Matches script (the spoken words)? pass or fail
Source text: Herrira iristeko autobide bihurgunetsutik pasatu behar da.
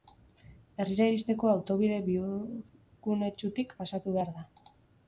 pass